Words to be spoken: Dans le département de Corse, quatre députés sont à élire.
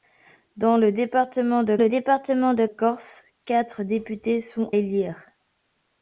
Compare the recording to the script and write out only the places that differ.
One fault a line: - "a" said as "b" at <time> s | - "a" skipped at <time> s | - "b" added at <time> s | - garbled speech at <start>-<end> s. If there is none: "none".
- "le département de" added at 1.8 s
- "à" skipped at 4.7 s